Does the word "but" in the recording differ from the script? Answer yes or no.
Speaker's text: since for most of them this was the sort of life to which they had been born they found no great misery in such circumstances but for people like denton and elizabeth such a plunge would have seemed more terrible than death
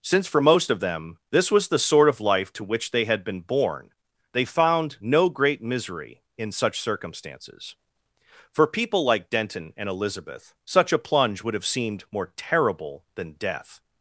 yes